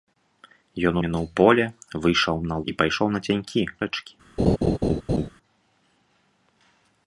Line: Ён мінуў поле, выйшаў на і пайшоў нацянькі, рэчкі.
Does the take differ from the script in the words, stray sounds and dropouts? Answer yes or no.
yes